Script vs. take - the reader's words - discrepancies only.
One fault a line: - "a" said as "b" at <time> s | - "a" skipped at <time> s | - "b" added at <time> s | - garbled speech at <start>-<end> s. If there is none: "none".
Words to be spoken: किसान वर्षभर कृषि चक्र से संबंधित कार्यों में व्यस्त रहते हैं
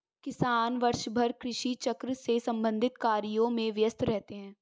none